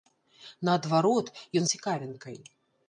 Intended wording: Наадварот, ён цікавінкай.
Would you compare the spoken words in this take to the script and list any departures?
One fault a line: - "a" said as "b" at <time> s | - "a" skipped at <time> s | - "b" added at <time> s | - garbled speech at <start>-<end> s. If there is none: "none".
none